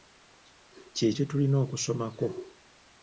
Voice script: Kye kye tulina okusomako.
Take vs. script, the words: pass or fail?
pass